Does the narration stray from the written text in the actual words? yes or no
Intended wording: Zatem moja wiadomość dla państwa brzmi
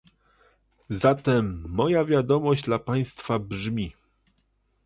no